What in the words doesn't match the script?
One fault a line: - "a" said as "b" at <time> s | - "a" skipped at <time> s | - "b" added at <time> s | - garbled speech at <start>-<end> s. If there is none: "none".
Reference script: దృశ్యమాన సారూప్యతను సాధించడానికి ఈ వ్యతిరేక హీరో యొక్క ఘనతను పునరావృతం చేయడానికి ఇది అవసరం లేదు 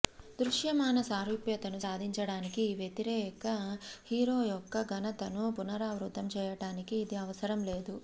none